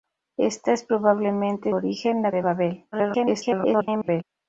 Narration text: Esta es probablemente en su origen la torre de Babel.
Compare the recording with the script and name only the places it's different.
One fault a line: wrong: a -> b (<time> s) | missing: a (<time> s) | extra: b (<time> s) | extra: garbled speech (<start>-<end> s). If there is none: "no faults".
missing: en su (1.7 s)
missing: torre (2.3 s)
extra: garbled speech (2.9-4.2 s)